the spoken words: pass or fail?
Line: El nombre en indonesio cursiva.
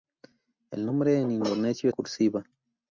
pass